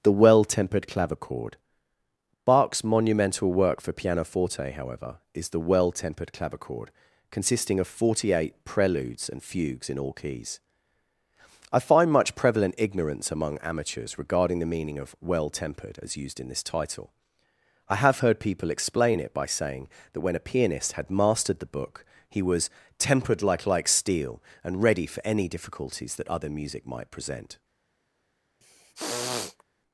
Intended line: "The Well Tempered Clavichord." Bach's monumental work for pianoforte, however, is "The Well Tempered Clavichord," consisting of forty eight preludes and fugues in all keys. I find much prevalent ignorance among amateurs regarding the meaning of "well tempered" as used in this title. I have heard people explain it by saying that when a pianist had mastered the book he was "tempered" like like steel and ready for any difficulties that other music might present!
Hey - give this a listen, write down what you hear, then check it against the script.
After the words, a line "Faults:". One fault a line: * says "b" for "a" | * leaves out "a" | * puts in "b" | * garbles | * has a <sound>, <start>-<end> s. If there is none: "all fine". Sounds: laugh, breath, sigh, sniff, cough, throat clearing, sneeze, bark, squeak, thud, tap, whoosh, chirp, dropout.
"The Well Tempered Clavichord." Bach's monumental work for pianoforte, however, is "The Well Tempered Clavichord," consisting of forty eight preludes and fugues in all keys. I find much prevalent ignorance among amateurs regarding the meaning of "well tempered" as used in this title. I have heard people explain it by saying that when a pianist had mastered the book he was "tempered" like like steel and ready for any difficulties that other music might present!
Faults:
* has a throat clearing, 28.6-29.6 s